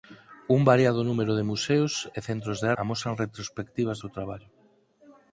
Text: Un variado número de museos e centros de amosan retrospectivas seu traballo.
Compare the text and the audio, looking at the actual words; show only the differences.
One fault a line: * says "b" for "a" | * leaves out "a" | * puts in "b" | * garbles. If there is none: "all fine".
all fine